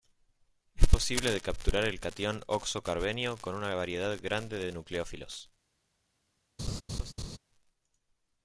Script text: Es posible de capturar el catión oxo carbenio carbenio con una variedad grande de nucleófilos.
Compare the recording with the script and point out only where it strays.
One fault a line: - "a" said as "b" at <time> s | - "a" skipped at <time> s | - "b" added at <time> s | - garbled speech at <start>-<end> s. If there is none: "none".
- "carbenio" skipped at 3.4 s